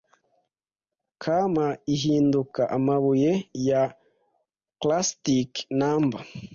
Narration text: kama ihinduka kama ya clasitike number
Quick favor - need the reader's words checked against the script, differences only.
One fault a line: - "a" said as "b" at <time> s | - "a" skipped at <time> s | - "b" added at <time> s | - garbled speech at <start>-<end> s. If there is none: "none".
- "kama" said as "amabuye" at 2.8 s